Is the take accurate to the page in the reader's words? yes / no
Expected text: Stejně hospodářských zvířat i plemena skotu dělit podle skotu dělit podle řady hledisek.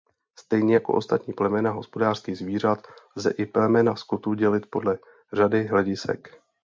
no